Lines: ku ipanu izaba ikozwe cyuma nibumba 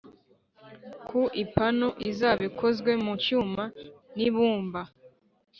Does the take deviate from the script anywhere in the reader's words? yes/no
yes